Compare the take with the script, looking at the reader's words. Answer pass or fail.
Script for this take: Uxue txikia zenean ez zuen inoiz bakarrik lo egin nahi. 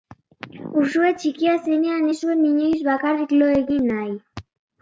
pass